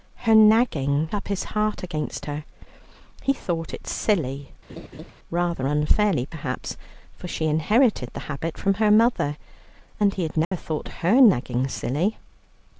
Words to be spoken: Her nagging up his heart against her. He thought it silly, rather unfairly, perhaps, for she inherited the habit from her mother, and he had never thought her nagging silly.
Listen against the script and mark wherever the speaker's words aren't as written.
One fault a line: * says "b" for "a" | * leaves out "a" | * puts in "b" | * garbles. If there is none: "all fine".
all fine